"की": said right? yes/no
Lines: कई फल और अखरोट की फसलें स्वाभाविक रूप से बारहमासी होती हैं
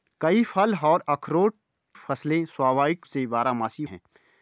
no